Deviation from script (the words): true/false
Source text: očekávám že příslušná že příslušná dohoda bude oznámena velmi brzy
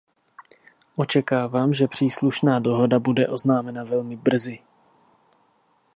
true